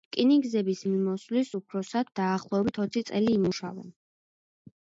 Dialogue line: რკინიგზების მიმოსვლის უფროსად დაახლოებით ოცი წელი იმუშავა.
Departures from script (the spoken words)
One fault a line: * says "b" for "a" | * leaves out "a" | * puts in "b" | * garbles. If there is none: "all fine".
all fine